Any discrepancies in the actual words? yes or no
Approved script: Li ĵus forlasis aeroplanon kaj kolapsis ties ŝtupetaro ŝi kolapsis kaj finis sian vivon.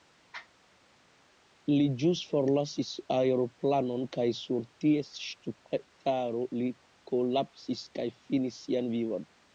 yes